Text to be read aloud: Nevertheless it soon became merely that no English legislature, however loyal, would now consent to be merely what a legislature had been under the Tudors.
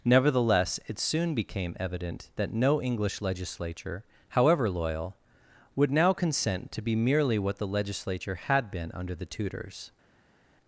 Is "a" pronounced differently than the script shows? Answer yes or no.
yes